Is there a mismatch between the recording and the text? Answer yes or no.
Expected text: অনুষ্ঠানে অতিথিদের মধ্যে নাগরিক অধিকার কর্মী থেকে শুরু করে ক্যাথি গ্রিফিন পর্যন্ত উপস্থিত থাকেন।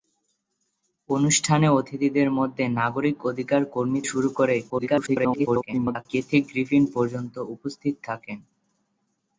yes